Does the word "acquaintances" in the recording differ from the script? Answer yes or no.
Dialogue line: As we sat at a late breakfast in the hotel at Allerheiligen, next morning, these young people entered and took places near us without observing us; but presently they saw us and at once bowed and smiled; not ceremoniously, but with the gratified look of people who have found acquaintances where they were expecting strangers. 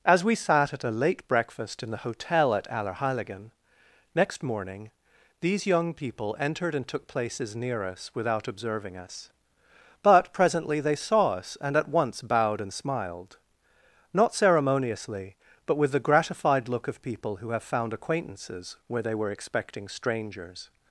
no